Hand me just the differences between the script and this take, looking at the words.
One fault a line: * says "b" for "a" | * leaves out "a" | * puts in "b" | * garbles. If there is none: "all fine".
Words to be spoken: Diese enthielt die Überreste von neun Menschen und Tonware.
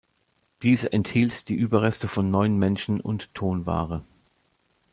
all fine